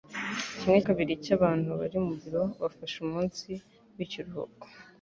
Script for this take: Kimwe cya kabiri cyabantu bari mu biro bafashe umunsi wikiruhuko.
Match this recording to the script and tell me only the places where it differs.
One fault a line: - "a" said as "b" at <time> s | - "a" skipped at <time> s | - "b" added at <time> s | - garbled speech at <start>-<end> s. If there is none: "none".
- "cya" skipped at 0.8 s